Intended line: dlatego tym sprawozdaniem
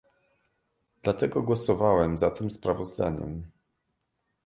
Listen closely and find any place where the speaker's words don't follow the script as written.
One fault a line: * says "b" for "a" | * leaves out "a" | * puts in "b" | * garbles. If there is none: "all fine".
* puts in "głosowałem za"